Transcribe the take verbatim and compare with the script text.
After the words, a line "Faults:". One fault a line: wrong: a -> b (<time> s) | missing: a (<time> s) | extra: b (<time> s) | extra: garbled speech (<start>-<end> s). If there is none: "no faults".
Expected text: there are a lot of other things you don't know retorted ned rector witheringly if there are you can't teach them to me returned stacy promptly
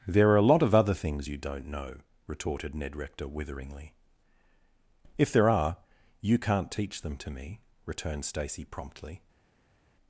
there are a lot of other things you don't know retorted ned rector witheringly if there are you can't teach them to me returned stacy promptly
Faults:
no faults